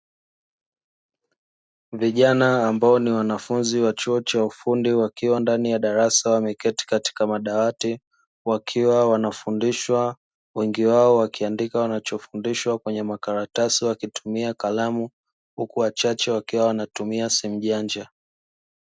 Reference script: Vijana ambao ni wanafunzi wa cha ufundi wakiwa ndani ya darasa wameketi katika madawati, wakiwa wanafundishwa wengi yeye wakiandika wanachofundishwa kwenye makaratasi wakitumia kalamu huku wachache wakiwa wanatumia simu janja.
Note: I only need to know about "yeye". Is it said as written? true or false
false